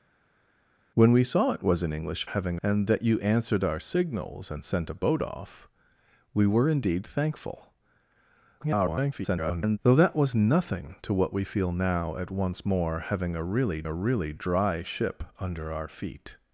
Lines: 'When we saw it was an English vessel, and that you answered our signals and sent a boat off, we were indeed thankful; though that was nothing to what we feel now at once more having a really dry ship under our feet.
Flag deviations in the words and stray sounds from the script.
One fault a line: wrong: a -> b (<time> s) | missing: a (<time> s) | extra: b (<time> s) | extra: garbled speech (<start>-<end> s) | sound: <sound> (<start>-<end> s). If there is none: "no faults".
wrong: vessel -> having (2.2 s)
extra: garbled speech (8.6-9.8 s)
extra: a really (13.8 s)